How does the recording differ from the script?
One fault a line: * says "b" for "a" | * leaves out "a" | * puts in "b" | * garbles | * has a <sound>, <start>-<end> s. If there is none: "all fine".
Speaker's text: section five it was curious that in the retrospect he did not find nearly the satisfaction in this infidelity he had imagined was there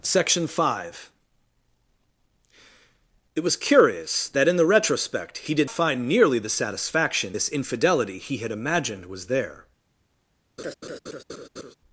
* leaves out "not"
* leaves out "in"
* has a laugh, 10.6-11.7 s